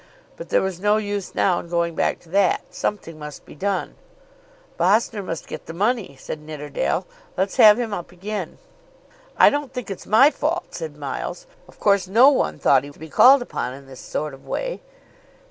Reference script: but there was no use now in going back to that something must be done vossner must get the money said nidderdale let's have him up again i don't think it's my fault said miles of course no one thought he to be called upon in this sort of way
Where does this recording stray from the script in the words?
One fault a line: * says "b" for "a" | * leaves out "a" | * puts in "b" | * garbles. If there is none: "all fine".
all fine